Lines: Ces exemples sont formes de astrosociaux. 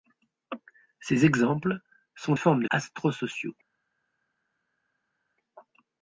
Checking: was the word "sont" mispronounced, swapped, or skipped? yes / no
no